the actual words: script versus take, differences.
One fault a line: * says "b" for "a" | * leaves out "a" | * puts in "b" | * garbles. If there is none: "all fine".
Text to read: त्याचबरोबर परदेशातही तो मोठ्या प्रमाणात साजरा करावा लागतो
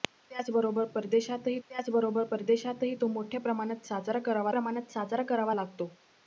* puts in "त्याचबरोबर परदेशातही"
* puts in "प्रमाणात साजरा करावा"